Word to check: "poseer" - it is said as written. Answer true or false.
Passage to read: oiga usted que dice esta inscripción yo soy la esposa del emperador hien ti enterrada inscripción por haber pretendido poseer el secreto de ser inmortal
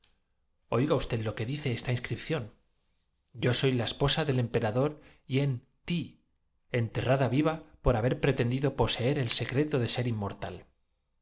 true